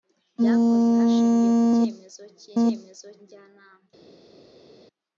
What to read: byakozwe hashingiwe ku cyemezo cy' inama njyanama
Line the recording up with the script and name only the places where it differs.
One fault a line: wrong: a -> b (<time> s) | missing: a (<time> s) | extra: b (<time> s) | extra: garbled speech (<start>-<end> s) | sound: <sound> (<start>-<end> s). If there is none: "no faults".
wrong: inama -> cyemezo (2.6 s)